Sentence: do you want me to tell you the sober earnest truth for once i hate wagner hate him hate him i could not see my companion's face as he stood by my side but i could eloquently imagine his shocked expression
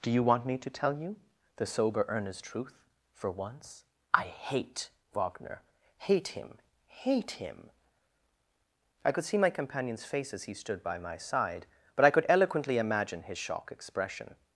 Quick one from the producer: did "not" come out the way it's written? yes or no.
no